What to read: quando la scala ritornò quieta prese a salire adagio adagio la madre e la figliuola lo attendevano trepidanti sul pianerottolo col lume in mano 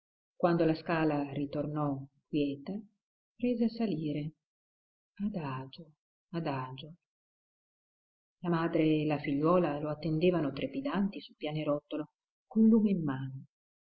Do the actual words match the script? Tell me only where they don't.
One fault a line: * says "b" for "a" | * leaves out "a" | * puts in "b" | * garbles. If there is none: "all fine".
all fine